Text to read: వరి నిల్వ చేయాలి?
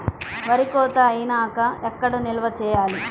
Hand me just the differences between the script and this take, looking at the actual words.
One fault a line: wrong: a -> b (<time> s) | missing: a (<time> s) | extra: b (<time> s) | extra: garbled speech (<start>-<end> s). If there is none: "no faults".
extra: కోత అయినాక ఎక్కడ (0.7 s)